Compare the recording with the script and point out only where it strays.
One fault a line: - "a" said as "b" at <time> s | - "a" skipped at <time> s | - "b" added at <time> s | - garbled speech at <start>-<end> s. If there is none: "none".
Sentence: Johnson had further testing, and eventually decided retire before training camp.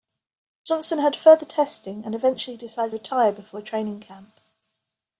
none